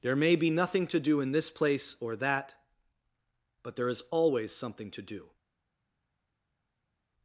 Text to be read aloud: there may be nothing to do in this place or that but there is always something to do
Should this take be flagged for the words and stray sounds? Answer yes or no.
no